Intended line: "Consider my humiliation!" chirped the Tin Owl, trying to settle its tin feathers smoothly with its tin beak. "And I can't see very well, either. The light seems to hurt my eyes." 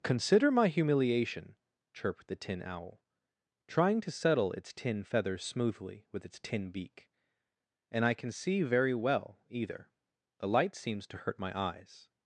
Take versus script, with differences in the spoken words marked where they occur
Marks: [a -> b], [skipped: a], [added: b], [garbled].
"Consider my humiliation!" chirped the Tin Owl, trying to settle its tin feathers smoothly with its tin beak. "And I [can't -> can] see very well, either. The light seems to hurt my eyes."